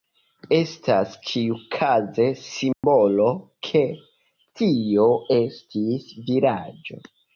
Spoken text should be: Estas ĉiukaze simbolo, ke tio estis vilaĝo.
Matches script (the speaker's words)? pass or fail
pass